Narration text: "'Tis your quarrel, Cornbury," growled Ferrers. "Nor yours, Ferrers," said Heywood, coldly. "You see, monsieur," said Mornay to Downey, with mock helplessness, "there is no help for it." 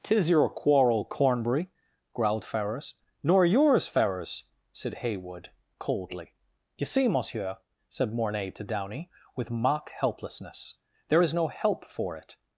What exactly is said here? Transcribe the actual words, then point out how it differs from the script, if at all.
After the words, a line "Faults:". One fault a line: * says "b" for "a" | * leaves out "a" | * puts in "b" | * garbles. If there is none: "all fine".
"'Tis your quarrel, Cornbury," growled Ferrers. "Nor yours, Ferrers," said Heywood, coldly. "You see, monsieur," said Mornay to Downey, with mock helplessness, "there is no help for it."
Faults:
all fine